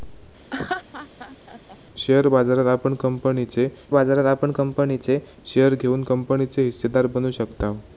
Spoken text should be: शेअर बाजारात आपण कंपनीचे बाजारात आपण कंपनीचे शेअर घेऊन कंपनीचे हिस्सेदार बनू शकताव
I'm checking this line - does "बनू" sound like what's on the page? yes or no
yes